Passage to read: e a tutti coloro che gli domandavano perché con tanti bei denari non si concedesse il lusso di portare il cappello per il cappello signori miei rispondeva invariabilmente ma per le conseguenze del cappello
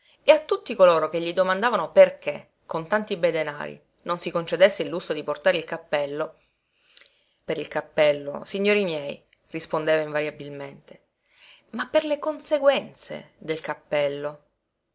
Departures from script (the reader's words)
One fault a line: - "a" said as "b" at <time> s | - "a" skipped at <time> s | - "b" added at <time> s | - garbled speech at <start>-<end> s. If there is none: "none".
none